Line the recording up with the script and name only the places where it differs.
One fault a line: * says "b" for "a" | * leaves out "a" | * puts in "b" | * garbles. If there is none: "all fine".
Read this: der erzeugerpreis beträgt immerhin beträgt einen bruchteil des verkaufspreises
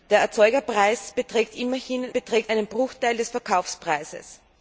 all fine